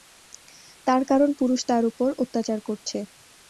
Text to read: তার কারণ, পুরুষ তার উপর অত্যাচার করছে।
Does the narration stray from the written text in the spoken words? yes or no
no